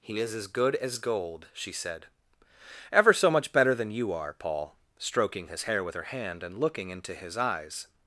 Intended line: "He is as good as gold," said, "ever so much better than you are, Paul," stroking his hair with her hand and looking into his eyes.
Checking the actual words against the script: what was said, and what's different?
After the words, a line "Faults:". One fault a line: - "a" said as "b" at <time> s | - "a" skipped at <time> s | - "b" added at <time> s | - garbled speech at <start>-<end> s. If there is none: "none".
"He is as good as gold," she said, "ever so much better than you are, Paul," stroking his hair with her hand and looking into his eyes.
Faults:
- "she" added at 1.5 s